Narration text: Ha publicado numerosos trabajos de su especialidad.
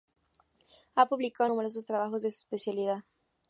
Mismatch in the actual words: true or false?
false